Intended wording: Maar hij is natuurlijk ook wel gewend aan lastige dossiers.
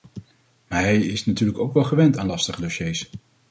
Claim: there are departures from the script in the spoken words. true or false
false